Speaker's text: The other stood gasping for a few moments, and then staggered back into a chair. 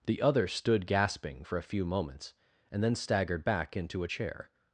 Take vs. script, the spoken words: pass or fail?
pass